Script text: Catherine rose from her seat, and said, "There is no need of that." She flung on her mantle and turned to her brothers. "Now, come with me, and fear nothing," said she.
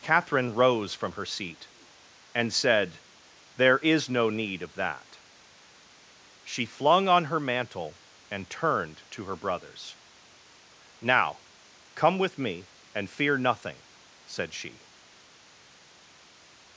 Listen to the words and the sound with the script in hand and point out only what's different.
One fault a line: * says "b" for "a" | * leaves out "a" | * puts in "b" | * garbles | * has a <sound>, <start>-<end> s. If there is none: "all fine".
all fine